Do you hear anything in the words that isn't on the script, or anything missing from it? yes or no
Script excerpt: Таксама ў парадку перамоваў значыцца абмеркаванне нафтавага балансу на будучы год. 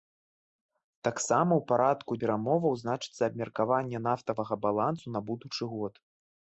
no